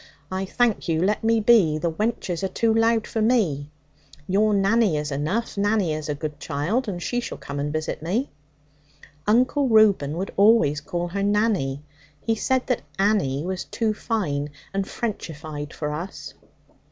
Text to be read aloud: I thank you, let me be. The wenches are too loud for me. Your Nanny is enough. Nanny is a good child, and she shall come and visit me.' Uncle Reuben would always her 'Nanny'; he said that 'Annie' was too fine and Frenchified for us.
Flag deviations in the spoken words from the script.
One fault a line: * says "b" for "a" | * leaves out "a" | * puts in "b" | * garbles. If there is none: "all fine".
* puts in "call"